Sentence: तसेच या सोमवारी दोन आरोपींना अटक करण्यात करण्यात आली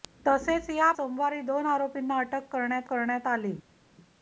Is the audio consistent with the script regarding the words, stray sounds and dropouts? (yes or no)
yes